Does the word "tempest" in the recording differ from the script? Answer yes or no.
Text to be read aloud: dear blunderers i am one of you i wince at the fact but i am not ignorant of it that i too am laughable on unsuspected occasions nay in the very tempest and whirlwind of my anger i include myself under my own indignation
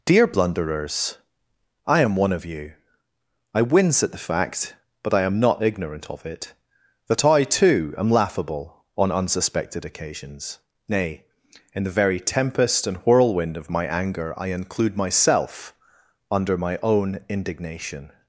no